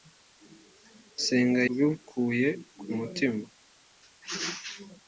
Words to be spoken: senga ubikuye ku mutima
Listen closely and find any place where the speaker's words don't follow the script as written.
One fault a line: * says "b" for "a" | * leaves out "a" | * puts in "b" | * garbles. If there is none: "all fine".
all fine